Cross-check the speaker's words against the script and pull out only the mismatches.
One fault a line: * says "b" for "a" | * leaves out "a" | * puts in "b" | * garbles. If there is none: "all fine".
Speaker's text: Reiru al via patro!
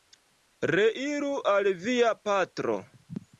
all fine